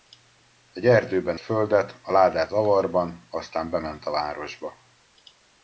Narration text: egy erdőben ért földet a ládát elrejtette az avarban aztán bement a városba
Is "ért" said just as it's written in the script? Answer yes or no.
no